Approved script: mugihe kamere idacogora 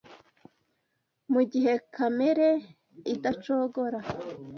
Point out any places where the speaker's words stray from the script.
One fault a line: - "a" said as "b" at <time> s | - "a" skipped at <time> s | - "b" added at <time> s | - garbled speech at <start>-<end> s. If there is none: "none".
none